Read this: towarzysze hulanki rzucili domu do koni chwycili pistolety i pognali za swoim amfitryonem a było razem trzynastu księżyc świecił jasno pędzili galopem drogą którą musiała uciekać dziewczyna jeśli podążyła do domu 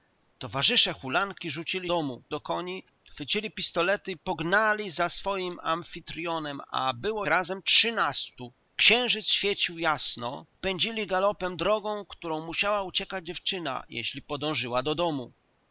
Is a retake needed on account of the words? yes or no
no